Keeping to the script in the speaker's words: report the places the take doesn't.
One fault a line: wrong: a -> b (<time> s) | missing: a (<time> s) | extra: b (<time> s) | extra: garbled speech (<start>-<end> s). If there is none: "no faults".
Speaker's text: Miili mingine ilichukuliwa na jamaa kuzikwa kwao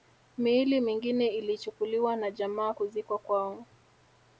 no faults